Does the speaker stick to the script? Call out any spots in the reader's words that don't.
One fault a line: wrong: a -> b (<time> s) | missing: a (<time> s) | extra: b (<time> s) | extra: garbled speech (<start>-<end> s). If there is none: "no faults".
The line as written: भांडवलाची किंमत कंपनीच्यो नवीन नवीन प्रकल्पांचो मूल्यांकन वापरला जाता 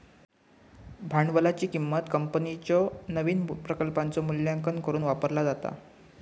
missing: नवीन (3.4 s)
extra: करुक (4.8 s)